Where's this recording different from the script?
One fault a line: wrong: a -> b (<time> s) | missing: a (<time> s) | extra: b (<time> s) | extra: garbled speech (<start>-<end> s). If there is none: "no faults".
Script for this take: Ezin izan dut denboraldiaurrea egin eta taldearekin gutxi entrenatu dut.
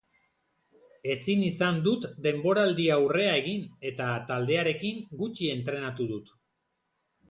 no faults